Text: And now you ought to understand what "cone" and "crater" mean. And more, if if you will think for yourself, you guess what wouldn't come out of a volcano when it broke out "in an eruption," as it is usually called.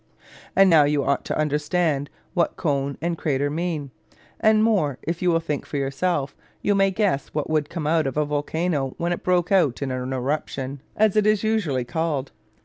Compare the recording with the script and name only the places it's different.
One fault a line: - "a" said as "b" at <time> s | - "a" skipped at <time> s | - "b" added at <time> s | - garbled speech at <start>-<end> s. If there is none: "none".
- "if" skipped at 5.2 s
- "may" added at 6.7 s
- "wouldn't" said as "would" at 7.5 s